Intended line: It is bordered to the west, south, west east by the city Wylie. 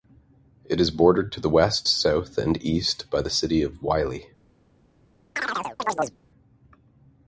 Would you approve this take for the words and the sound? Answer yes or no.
no